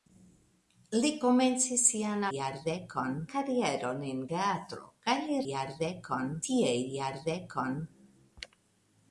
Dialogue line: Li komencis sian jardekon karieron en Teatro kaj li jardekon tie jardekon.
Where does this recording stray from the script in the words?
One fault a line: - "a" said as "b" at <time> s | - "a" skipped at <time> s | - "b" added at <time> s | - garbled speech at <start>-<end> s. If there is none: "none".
none